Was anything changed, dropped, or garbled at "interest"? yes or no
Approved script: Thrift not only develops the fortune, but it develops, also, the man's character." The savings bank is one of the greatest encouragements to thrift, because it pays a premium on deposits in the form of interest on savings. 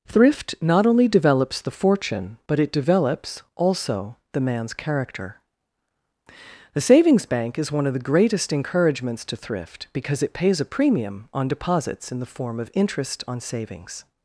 no